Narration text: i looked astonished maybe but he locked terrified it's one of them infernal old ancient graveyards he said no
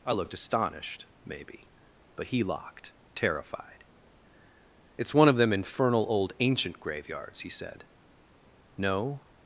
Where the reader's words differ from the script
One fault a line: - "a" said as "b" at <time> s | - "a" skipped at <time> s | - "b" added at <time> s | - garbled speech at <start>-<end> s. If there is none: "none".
none